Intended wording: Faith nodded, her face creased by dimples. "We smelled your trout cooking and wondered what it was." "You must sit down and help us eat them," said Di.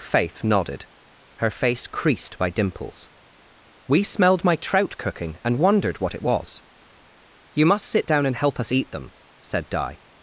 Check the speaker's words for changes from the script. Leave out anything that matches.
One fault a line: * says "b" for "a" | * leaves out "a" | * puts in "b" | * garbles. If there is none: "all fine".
* says "my" for "your"